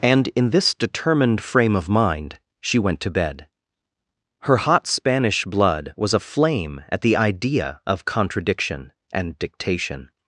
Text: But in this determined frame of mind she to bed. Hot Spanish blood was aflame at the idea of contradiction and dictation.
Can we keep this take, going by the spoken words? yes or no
no